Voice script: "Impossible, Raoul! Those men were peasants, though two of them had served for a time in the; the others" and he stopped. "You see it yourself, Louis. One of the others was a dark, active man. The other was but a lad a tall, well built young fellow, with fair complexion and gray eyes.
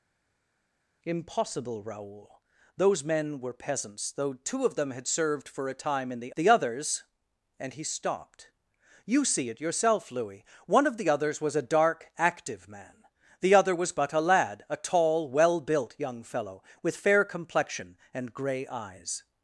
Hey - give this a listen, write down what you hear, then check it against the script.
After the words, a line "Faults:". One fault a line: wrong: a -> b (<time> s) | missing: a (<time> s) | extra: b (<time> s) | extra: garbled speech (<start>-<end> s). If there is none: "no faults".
"Impossible, Raoul! Those men were peasants, though two of them had served for a time in the; the others" and he stopped. "You see it yourself, Louis. One of the others was a dark, active man. The other was but a lad a tall, well built young fellow, with fair complexion and gray eyes.
Faults:
no faults